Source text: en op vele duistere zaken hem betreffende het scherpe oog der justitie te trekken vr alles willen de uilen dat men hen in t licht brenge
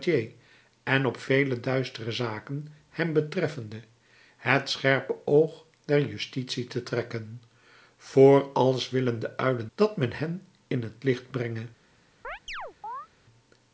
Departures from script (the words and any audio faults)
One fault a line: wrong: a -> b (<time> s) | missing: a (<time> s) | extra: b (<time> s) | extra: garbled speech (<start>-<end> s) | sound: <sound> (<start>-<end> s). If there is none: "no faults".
sound: chirp (12.2-13.1 s)